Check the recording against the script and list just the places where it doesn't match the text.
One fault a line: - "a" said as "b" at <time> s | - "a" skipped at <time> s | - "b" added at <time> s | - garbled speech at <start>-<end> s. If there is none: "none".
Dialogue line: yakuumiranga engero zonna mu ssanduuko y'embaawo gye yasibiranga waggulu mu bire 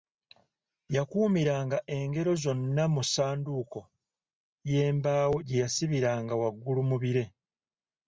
none